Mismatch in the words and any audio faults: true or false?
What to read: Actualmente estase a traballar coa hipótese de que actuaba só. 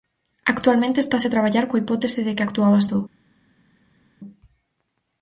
false